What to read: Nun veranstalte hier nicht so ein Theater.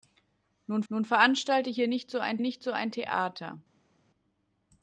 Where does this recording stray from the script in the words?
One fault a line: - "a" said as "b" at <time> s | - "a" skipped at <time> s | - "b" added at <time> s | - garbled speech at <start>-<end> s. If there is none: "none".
- "nun" added at 0.9 s
- "nicht so ein" added at 2.4 s